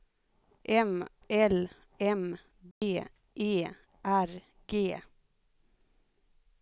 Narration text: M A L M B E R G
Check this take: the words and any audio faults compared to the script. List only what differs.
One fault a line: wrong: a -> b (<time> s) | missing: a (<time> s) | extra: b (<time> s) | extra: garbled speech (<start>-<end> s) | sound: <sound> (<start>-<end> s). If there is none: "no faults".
missing: A (1.1 s)
sound: dropout (2.7-2.8 s)